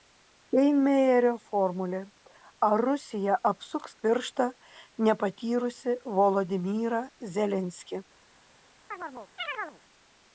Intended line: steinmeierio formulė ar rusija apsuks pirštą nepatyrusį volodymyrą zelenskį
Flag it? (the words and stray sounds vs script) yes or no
yes